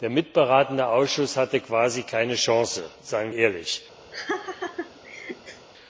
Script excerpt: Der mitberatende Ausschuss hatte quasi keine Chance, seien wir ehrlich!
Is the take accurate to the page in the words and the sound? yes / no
no